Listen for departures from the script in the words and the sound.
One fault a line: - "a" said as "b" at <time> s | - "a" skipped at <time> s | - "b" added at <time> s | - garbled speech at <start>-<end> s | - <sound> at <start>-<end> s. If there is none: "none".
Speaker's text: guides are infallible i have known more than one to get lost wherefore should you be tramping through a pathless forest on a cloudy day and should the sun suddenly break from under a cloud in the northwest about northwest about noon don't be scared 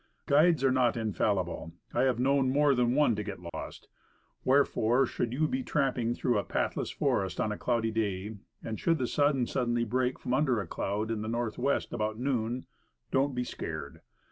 - "not" added at 0.7 s
- dropout at 3.5-3.5 s
- "northwest about" skipped at 12.2 s